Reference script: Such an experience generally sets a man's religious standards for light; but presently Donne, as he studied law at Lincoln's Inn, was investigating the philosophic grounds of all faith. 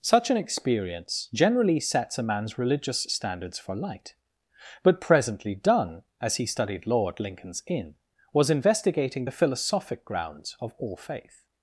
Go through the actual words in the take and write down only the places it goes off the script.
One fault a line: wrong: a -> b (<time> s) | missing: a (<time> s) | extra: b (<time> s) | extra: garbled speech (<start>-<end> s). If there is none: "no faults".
no faults